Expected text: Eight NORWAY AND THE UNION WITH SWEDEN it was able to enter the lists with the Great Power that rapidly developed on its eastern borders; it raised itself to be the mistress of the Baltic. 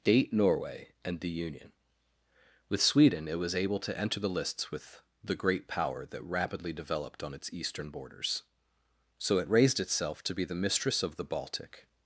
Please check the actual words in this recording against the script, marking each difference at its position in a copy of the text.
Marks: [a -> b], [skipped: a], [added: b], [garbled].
[Eight -> Date] NORWAY AND THE UNION WITH SWEDEN it was able to enter the lists with the Great Power that rapidly developed on its eastern borders; [added: so] it raised itself to be the mistress of the Baltic.